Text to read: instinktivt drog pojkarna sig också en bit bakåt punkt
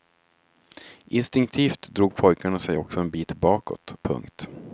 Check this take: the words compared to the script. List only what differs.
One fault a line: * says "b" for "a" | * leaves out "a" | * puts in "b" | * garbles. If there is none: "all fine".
all fine